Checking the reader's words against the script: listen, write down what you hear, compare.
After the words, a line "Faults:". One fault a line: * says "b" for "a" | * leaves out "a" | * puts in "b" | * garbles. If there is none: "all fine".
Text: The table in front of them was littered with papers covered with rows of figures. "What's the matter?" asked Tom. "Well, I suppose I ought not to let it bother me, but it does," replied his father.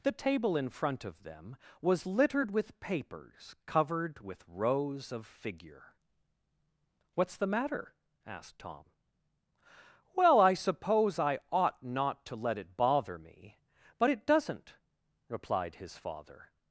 The table in front of them was littered with papers covered with rows of figure. "What's the matter?" asked Tom. "Well, I suppose I ought not to let it bother me, but it doesn't," replied his father.
Faults:
* says "figure" for "figures"
* says "doesn't" for "does"